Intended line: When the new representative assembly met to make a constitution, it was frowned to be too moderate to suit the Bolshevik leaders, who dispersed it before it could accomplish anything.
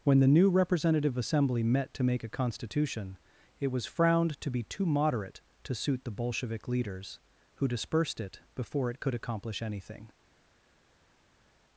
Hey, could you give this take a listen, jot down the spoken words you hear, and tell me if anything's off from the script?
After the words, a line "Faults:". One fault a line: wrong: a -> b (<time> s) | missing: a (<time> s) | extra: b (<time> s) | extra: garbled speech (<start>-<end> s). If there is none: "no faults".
When the new representative assembly met to make a constitution, it was frowned to be too moderate to suit the Bolshevik leaders, who dispersed it before it could accomplish anything.
Faults:
no faults